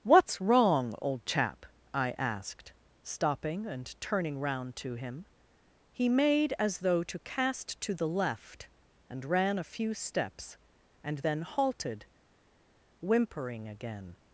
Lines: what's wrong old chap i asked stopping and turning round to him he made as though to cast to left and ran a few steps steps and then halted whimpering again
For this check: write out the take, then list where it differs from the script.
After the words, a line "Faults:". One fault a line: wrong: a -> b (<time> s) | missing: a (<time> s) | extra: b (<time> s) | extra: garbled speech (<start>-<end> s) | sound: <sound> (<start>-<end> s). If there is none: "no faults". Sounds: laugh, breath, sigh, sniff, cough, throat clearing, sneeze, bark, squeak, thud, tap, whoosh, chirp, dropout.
what's wrong old chap i asked stopping and turning round to him he made as though to cast to the left and ran a few steps and then halted whimpering again
Faults:
extra: the (7.9 s)
missing: steps (10.6 s)